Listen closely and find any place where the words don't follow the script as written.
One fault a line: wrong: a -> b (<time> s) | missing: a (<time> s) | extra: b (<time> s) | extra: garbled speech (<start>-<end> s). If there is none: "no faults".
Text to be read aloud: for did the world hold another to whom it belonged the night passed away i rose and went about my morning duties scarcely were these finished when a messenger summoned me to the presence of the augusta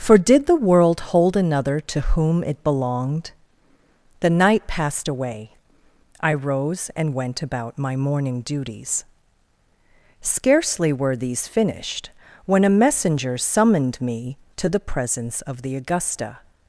no faults